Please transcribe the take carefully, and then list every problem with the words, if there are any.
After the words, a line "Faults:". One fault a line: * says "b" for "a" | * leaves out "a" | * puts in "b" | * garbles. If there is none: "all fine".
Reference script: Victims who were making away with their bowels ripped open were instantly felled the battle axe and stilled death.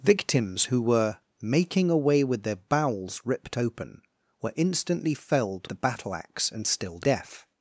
Victims who were making away with their bowels ripped open were instantly felled the battle axe and stilled death.
Faults:
all fine